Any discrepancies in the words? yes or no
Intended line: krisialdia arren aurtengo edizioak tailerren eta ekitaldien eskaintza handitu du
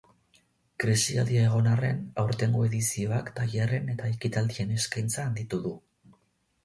yes